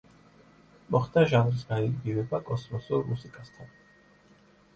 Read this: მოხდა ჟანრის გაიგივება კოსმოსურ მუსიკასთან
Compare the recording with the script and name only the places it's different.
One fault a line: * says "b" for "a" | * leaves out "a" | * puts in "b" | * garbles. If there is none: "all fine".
all fine